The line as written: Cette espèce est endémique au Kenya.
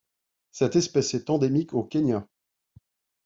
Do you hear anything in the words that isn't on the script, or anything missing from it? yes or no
no